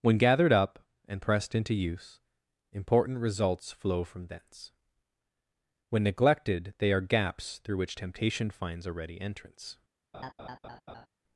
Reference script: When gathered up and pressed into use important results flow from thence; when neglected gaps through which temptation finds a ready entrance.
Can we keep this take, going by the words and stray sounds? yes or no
no